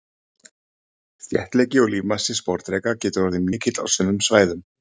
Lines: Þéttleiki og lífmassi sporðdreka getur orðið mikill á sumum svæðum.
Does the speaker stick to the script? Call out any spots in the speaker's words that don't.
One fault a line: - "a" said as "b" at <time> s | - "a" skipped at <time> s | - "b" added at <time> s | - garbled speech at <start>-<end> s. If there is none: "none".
none